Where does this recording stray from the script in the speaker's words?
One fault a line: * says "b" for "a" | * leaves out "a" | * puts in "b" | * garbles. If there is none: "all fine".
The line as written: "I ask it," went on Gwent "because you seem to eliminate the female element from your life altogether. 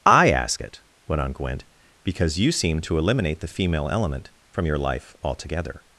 all fine